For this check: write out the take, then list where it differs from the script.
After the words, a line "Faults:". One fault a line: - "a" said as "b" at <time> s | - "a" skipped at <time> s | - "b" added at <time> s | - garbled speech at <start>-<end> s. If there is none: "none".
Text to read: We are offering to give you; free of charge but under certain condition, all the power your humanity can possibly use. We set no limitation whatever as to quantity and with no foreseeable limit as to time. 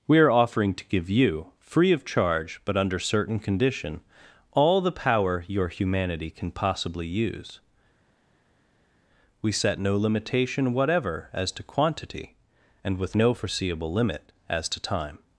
We are offering to give you; free of charge but under certain condition, all the power your humanity can possibly use. We set no limitation whatever as to quantity and with no foreseeable limit as to time.
Faults:
none